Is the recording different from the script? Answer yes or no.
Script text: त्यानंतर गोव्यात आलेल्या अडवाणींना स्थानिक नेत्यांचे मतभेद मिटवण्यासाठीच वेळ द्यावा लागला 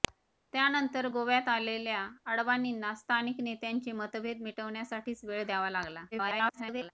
yes